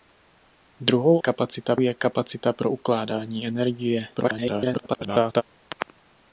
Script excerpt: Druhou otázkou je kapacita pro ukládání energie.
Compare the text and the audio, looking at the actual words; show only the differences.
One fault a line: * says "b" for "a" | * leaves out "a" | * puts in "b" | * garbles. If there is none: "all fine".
* says "kapacita" for "otázkou"
* garbles